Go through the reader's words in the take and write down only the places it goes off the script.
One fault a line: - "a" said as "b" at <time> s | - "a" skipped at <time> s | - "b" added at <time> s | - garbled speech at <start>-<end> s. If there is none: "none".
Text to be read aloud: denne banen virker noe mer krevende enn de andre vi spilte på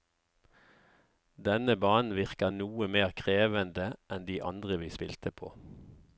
none